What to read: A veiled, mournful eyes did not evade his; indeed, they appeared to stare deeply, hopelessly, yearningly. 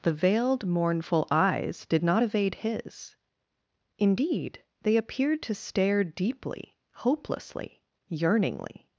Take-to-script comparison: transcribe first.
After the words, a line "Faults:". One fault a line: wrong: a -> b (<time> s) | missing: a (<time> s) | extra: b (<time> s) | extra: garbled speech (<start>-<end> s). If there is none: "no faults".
The veiled, mournful eyes did not evade his; indeed, they appeared to stare deeply, hopelessly, yearningly.
Faults:
wrong: A -> The (0.0 s)